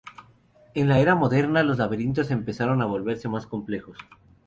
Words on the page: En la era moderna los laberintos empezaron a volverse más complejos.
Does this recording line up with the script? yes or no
yes